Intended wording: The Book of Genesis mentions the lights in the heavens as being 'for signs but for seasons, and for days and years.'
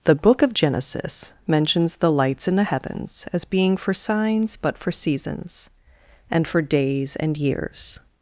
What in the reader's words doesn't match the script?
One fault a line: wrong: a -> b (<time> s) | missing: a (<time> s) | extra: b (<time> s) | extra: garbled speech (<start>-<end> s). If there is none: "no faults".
no faults